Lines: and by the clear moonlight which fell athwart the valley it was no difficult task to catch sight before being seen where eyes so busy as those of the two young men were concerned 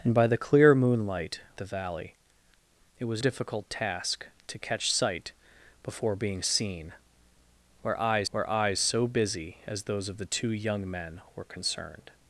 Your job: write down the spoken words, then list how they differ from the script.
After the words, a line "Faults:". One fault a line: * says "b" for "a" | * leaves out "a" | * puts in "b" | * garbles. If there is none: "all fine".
and by the clear moonlight the valley it was difficult task to catch sight before being seen where eyes where eyes so busy as those of the two young men were concerned
Faults:
* leaves out "which fell athwart"
* leaves out "no"
* puts in "where eyes"